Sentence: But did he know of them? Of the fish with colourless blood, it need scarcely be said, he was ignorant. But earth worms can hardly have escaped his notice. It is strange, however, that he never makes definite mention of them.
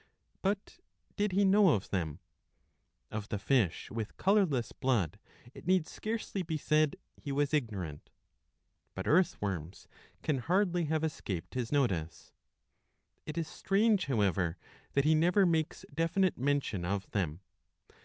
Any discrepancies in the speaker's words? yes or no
no